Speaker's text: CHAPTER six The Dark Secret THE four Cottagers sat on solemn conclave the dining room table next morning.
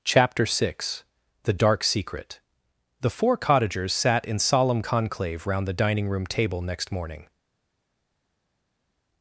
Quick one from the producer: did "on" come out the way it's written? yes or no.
no